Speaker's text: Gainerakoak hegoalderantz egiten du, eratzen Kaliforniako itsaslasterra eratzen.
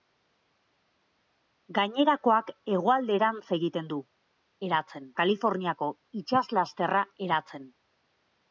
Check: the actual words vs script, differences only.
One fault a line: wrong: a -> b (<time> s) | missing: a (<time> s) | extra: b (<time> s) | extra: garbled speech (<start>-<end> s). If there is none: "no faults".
no faults